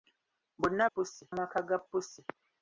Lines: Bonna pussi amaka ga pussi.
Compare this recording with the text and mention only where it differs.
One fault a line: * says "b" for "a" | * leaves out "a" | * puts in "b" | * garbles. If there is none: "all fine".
all fine